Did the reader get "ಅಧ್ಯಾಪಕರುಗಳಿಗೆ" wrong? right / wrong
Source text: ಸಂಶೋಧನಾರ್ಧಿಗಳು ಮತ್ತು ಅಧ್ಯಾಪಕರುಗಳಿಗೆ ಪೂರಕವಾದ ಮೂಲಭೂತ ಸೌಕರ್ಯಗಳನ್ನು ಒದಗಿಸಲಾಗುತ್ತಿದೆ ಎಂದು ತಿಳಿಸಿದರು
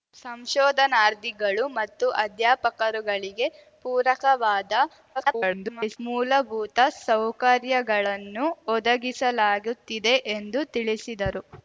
right